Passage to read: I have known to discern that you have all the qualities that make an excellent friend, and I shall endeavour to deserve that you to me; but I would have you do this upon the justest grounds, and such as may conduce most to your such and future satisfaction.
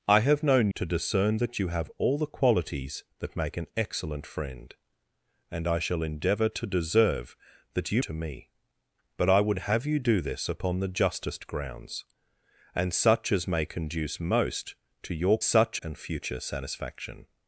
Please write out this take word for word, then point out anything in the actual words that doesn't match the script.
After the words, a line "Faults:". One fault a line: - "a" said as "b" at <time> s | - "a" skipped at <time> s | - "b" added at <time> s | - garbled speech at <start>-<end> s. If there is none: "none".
I have known to discern that you have all the qualities that make an excellent friend, and I shall endeavour to deserve that you to me; but I would have you do this upon the justest grounds, and such as may conduce most to your such and future satisfaction.
Faults:
none